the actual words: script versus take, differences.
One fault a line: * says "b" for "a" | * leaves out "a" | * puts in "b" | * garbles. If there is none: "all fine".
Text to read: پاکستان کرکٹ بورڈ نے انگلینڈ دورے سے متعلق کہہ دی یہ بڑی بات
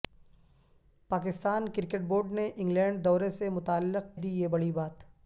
* leaves out "کہہ"